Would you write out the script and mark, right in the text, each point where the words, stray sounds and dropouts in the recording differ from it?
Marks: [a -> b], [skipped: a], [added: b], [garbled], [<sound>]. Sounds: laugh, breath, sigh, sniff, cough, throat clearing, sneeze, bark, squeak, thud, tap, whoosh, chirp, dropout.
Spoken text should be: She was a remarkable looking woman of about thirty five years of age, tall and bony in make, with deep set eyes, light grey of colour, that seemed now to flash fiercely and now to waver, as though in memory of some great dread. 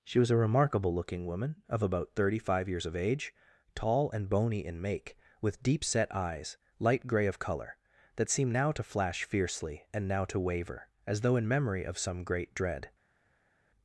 She was a remarkable looking woman of about thirty five years of age, tall and bony in make, with deep set eyes, light grey of colour, that seemed now to flash fiercely and now to waver, as though in memory of some great dread.